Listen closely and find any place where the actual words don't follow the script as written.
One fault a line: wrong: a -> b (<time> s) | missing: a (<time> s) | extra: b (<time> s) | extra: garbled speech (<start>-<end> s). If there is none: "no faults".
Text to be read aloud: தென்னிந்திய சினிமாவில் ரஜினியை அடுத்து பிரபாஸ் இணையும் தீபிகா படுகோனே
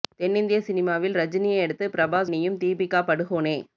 no faults